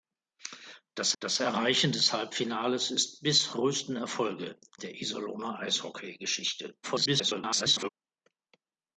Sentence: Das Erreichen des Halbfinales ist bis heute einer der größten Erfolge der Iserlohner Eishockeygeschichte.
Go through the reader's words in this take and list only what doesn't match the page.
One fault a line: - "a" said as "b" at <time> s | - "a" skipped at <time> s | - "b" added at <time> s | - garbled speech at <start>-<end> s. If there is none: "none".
- "das" added at 1.2 s
- "heute einer der" skipped at 3.5 s
- garbled speech at 6.8-7.9 s